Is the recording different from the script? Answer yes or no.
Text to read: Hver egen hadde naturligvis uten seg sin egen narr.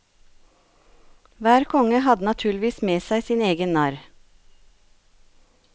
yes